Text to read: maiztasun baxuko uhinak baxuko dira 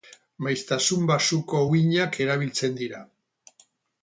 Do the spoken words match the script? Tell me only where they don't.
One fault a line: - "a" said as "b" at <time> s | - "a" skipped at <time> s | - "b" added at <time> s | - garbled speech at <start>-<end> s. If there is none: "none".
- "baxuko" said as "erabiltzen" at 2.3 s